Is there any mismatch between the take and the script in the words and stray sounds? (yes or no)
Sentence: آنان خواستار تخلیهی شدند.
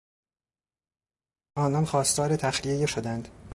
no